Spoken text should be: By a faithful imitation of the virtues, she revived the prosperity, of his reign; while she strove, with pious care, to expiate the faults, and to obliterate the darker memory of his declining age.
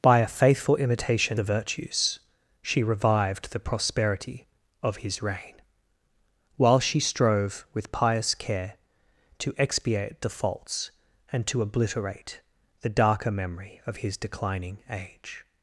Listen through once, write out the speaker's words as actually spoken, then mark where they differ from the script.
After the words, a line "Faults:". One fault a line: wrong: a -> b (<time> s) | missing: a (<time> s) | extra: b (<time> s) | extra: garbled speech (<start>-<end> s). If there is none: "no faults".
By a faithful imitation the virtues, she revived the prosperity, of his reign; while she strove, with pious care, to expiate the faults, and to obliterate the darker memory of his declining age.
Faults:
missing: of (1.4 s)